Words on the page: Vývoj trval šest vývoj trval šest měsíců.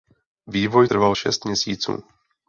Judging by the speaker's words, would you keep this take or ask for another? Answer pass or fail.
fail